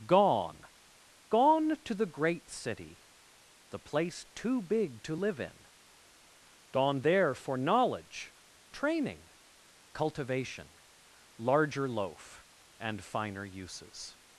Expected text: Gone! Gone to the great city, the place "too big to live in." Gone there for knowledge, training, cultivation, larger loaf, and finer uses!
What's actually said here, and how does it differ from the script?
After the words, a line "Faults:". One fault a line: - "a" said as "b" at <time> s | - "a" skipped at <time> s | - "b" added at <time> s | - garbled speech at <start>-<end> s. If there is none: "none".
Gone! Gone to the great city, the place "too big to live in." Gone there for knowledge, training, cultivation, larger loaf, and finer uses!
Faults:
none